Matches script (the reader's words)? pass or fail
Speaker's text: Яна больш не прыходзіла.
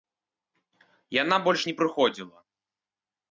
pass